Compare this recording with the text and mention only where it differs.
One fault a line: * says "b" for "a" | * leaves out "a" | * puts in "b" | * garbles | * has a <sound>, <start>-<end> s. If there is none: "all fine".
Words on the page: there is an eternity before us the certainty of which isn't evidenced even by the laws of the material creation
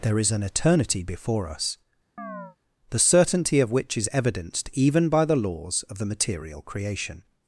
* has a chirp, 2.2-2.6 s
* says "is" for "isn't"